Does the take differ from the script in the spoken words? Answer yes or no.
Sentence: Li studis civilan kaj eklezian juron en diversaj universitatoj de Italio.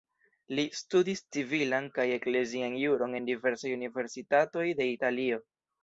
no